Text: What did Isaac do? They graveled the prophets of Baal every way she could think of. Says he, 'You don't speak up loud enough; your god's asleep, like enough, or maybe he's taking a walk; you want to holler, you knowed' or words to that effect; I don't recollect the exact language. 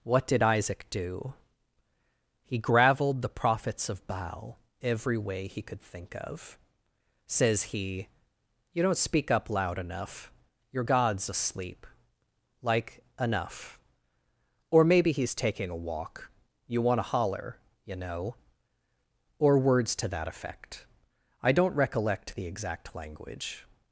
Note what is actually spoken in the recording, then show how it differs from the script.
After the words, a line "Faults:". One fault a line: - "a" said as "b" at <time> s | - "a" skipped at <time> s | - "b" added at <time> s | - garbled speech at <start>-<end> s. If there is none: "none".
What did Isaac do? He graveled the prophets of Baal every way he could think of. Says he, 'You don't speak up loud enough; your god's asleep, like enough, or maybe he's taking a walk; you want to holler, you know' or words to that effect; I don't recollect the exact language.
Faults:
- "They" said as "He" at 2.4 s
- "she" said as "he" at 5.5 s
- "knowed" said as "know" at 18.0 s